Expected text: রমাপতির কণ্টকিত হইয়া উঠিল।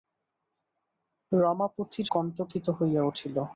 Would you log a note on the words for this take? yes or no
no